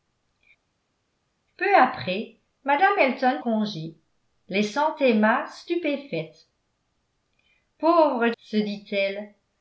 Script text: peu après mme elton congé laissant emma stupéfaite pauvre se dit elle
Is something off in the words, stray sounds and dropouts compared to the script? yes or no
no